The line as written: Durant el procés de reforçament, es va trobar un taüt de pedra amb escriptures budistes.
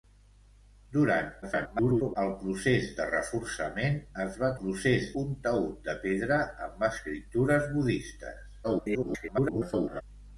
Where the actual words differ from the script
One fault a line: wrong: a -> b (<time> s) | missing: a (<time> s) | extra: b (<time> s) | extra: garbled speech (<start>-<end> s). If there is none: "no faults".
extra: garbled speech (1.4-2.2 s)
wrong: trobar -> procés (4.6 s)
extra: garbled speech (8.6-10.0 s)